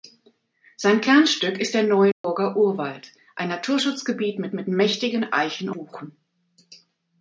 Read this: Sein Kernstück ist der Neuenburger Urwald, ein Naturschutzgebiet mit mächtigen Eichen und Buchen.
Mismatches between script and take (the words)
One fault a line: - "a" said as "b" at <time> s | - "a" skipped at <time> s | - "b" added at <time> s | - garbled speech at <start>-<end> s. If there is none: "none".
- "mit" added at 4.5 s
- "und" skipped at 5.7 s